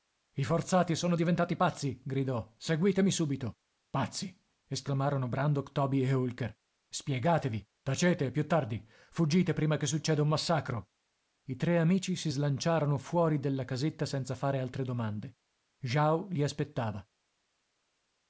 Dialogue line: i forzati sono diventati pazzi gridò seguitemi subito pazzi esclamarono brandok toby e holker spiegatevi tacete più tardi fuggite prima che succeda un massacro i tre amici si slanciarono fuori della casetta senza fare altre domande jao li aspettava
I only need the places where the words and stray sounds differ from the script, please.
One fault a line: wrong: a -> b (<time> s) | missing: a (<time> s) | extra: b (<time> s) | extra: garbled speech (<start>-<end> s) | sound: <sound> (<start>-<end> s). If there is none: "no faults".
no faults